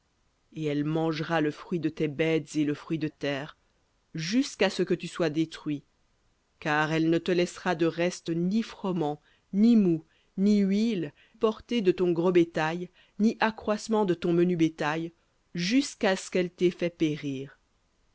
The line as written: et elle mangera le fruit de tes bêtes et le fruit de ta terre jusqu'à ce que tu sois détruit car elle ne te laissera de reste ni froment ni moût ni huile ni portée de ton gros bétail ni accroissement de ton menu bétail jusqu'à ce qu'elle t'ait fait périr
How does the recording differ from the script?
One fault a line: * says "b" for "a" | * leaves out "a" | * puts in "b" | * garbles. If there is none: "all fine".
* leaves out "ta"
* leaves out "ni"